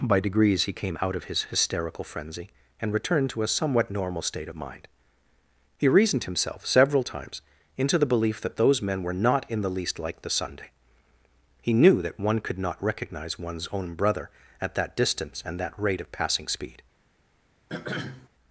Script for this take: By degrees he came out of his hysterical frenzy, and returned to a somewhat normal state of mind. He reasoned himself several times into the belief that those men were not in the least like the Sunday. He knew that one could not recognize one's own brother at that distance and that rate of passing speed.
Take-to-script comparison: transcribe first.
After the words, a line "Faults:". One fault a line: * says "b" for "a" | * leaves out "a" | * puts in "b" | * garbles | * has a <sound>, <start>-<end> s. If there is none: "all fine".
By degrees he came out of his hysterical frenzy, and returned to a somewhat normal state of mind. He reasoned himself several times into the belief that those men were not in the least like the Sunday. He knew that one could not recognize one's own brother at that distance and that rate of passing speed.
Faults:
* has a throat clearing, 17.7-18.3 s